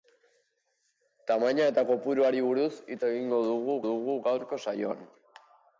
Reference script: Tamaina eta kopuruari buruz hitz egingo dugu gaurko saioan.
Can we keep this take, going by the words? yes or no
no